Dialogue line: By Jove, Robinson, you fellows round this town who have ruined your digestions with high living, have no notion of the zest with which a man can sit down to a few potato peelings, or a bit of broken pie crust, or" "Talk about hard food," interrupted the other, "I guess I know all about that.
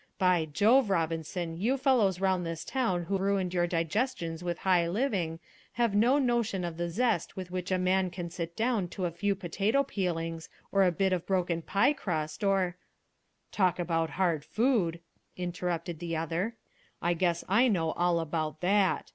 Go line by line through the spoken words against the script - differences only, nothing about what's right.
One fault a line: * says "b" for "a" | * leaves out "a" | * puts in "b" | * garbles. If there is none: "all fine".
* leaves out "have"